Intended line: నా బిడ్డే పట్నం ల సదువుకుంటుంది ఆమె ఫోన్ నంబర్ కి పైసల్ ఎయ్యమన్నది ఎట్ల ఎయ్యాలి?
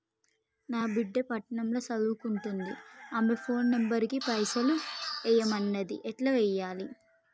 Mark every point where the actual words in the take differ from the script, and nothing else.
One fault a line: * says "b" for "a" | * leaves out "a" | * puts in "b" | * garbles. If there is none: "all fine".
all fine